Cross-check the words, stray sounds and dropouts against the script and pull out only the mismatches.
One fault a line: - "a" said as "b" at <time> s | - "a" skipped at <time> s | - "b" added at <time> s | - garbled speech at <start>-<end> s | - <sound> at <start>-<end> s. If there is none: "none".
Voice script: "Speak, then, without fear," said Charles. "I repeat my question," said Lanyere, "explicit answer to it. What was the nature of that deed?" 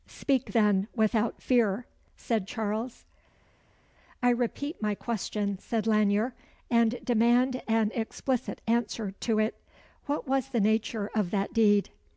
- "and demand an" added at 6.7 s